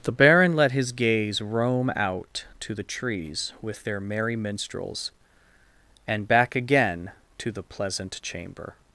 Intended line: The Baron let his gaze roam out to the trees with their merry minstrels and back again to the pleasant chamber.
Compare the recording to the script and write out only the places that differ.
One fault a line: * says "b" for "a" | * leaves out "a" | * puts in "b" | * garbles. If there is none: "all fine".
all fine